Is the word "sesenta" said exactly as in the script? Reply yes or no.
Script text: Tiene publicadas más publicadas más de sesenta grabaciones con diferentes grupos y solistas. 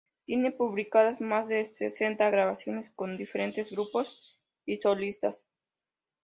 yes